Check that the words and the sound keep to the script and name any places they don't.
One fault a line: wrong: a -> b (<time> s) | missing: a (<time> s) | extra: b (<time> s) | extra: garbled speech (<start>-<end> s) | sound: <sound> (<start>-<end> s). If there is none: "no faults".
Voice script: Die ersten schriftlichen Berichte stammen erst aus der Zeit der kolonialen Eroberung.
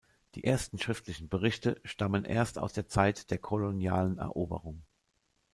no faults